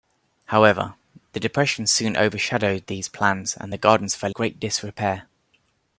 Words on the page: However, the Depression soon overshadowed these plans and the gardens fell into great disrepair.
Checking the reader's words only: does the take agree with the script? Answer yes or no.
no